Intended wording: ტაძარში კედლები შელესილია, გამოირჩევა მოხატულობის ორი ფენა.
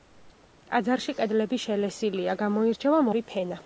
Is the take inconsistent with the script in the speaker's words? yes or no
yes